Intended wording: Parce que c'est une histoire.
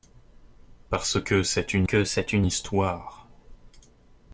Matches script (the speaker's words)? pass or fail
fail